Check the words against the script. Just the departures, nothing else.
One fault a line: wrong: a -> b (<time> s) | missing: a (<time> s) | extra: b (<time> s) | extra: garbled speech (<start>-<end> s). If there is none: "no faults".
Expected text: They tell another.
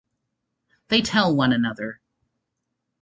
extra: one (1.4 s)